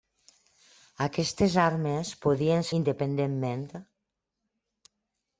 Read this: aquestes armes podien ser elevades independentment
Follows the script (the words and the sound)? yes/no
no